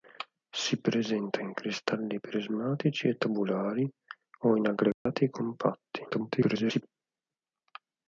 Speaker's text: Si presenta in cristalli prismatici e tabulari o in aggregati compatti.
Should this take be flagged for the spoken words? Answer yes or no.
yes